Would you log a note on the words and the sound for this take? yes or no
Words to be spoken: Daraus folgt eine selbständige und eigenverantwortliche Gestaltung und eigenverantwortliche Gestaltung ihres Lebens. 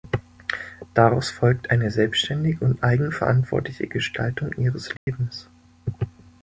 yes